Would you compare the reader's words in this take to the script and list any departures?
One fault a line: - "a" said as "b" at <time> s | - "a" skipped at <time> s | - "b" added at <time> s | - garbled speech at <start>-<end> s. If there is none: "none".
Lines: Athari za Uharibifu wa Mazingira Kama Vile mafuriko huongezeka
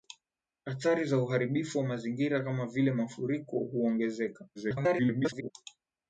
- garbled speech at 4.6-5.5 s